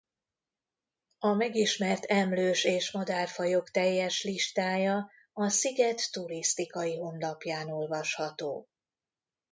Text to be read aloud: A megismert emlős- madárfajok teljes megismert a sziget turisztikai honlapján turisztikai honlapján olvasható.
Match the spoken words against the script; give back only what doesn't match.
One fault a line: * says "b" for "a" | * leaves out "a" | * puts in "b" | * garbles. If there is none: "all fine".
* puts in "és"
* says "listája" for "megismert"
* leaves out "turisztikai honlapján"